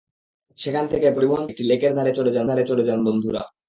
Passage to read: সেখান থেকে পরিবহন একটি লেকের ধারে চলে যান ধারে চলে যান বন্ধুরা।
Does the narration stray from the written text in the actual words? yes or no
no